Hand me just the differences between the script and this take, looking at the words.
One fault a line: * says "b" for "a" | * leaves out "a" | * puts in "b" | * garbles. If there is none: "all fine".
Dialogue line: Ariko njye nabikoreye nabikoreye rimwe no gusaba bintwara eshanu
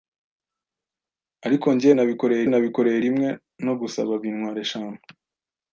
all fine